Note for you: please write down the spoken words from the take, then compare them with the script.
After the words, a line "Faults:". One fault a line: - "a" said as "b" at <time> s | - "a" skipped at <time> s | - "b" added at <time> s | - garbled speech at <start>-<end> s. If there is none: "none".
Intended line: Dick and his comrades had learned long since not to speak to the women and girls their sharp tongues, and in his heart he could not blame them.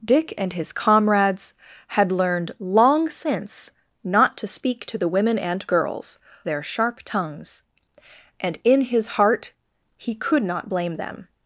Dick and his comrades had learned long since not to speak to the women and girls their sharp tongues, and in his heart he could not blame them.
Faults:
none